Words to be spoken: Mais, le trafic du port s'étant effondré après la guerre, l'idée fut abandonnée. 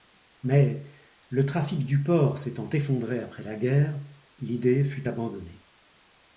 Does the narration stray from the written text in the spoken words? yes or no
no